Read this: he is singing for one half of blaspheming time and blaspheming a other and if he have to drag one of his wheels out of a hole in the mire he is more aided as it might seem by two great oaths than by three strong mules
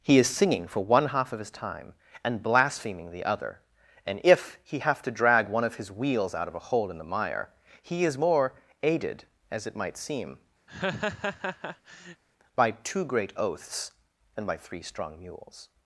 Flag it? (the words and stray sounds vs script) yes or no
yes